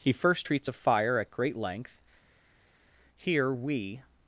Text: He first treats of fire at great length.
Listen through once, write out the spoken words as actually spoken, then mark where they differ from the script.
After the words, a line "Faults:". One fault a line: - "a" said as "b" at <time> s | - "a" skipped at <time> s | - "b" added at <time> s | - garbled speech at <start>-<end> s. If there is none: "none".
He first treats of fire at great length. Here we
Faults:
- "Here we" added at 3.2 s